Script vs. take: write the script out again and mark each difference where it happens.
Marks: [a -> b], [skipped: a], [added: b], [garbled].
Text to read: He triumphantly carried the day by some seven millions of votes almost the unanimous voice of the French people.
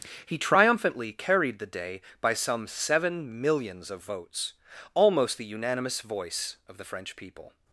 He triumphantly carried the day by some seven millions of votes almost the unanimous voice of the French people.